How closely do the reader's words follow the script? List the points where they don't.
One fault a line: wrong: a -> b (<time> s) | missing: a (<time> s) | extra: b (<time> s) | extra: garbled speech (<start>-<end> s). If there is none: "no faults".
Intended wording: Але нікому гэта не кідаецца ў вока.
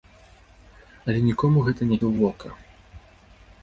missing: кідаецца (2.0 s)